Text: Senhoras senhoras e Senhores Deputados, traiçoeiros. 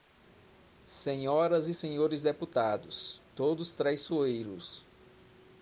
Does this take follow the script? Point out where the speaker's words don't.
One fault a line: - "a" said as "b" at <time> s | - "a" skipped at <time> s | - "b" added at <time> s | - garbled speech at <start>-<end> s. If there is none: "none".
- "senhoras" skipped at 1.7 s
- "todos" added at 3.3 s